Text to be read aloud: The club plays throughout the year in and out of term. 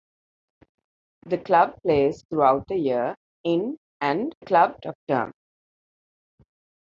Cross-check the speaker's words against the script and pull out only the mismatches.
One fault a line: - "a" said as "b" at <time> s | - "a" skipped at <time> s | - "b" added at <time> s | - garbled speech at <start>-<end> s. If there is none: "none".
- "out" said as "club" at 4.4 s